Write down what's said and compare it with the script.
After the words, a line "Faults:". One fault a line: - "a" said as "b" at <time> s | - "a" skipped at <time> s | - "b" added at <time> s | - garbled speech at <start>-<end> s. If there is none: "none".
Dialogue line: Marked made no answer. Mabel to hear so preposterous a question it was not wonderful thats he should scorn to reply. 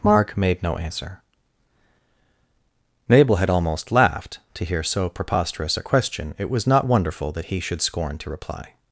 Mark made no answer. Mabel had almost laughed to hear so preposterous a question it was not wonderful that he should scorn to reply.
Faults:
- "Marked" said as "Mark" at 0.0 s
- "had almost laughed" added at 3.4 s
- "thats" said as "that" at 7.3 s